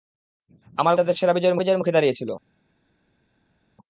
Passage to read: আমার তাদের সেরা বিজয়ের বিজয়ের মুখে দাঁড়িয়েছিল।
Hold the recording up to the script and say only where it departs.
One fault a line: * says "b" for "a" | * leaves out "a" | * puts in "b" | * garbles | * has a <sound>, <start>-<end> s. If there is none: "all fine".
all fine